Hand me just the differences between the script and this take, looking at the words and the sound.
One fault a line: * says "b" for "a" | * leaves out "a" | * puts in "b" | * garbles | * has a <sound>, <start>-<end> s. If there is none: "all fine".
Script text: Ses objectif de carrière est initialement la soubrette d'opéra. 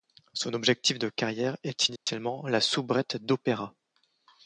* says "Son" for "Ses"
* has a dropout, 2.0-2.1 s